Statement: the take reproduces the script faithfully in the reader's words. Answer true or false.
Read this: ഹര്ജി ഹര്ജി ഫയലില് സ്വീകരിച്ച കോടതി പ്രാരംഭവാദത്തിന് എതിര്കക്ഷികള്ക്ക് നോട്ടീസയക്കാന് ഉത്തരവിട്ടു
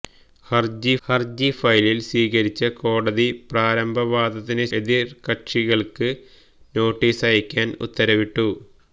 true